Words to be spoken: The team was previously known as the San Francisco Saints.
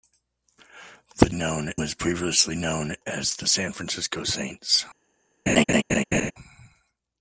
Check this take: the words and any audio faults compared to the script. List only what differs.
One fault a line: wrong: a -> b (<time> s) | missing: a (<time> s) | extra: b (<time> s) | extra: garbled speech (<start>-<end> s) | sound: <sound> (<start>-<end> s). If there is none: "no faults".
wrong: team -> known (1.3 s)
sound: laugh (5.5-6.3 s)